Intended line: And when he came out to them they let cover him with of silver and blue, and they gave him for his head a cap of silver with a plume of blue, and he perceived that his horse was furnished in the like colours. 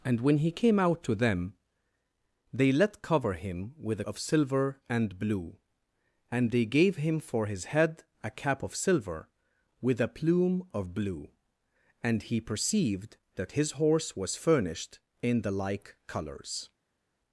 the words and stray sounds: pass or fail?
pass